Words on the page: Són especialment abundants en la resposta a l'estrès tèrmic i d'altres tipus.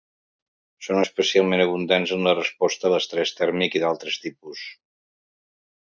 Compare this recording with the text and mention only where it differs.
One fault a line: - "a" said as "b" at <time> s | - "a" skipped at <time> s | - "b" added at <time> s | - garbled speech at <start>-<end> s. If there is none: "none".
none